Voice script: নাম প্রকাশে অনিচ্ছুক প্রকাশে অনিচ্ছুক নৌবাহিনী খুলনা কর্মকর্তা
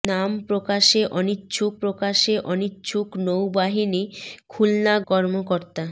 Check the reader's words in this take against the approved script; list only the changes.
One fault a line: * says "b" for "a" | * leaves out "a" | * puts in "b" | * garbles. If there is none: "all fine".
all fine